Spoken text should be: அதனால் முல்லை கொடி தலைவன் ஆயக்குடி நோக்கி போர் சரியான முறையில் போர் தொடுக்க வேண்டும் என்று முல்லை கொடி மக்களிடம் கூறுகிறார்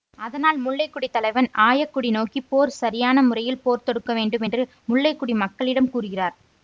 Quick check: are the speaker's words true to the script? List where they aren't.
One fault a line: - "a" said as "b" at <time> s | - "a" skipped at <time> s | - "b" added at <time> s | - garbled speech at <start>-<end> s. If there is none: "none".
none